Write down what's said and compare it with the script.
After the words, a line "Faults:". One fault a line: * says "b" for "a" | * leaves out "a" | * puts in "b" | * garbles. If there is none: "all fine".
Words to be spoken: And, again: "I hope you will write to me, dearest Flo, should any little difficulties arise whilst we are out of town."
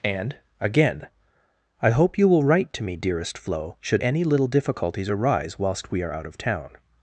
And, again: "I hope you will write to me, dearest Flo, should any little difficulties arise whilst we are out of town."
Faults:
all fine